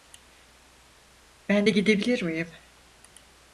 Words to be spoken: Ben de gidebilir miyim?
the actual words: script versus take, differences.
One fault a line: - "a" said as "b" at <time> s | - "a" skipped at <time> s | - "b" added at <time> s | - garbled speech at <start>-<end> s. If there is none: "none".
none